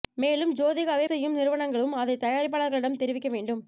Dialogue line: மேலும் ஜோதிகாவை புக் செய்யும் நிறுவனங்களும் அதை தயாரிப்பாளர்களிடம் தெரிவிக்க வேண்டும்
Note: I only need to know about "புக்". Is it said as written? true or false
false